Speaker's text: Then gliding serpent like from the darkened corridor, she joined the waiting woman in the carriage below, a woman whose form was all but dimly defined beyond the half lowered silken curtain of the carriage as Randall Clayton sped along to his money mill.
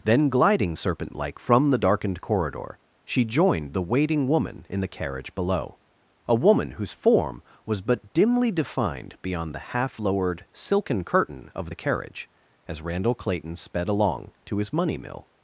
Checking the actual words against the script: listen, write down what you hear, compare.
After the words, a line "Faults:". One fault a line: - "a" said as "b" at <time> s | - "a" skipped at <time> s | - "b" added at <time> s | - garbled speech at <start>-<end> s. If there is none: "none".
Then gliding serpent like from the darkened corridor, she joined the waiting woman in the carriage below, a woman whose form was but dimly defined beyond the half lowered silken curtain of the carriage as Randall Clayton sped along to his money mill.
Faults:
- "all" skipped at 7.8 s